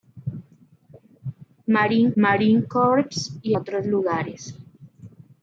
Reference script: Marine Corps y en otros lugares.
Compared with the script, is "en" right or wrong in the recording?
wrong